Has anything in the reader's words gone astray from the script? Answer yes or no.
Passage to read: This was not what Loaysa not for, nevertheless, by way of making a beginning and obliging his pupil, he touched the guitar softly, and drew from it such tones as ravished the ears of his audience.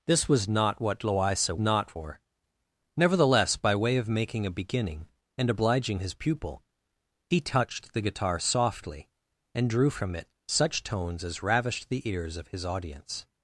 no